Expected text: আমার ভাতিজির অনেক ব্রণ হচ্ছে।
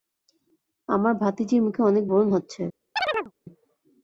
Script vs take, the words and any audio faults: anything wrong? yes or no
yes